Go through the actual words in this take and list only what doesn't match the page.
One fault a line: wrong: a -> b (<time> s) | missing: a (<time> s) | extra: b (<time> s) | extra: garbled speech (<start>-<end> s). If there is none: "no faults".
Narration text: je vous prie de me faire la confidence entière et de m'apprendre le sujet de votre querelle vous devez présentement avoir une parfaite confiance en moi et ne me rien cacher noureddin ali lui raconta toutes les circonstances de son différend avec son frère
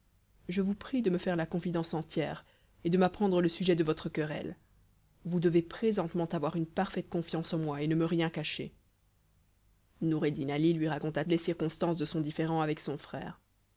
missing: toutes (11.2 s)